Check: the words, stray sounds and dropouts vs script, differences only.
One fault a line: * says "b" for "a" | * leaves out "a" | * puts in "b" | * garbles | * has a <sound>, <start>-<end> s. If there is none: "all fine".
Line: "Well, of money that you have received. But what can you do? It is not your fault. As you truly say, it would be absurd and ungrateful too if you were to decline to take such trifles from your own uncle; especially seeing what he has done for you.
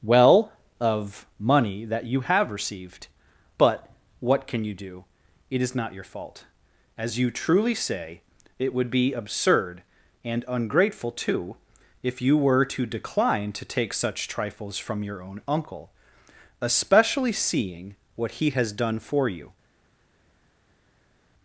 all fine